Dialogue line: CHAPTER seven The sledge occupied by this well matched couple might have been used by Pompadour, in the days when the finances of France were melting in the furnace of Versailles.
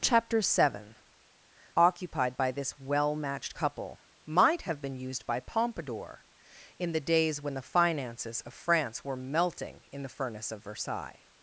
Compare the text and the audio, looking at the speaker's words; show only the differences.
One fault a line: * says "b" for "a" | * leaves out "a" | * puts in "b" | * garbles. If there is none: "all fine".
* leaves out "The sledge"